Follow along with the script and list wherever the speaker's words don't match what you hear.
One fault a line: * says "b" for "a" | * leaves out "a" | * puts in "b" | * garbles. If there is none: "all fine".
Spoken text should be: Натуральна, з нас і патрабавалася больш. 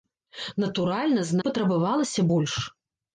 * leaves out "нас"